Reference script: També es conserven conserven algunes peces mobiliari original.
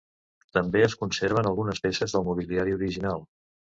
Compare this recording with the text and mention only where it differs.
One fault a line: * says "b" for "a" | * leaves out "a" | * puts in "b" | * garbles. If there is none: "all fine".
* leaves out "conserven"
* puts in "del"